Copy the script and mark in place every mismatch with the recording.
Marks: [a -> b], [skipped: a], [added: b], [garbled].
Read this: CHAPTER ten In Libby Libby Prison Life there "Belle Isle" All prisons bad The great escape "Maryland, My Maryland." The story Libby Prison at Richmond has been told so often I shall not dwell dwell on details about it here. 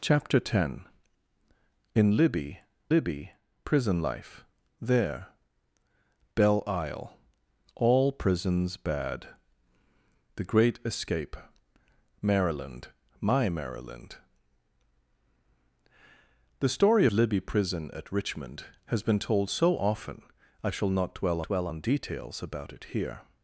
CHAPTER ten In Libby Libby Prison Life there "Belle Isle" All prisons bad The great escape "Maryland, My Maryland." The story Libby Prison at Richmond has been told so often I shall not dwell dwell on details about it here.